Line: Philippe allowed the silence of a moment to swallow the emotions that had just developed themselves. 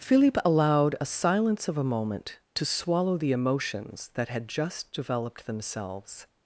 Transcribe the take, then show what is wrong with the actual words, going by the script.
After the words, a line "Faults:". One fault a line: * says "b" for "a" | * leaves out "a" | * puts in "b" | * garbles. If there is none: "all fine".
Philippe allowed a silence of a moment to swallow the emotions that had just developed themselves.
Faults:
* says "a" for "the"